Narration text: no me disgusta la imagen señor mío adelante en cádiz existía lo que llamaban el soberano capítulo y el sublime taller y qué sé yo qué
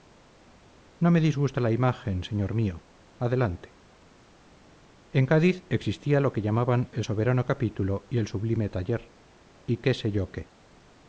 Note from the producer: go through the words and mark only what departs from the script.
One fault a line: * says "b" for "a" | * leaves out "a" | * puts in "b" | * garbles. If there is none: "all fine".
all fine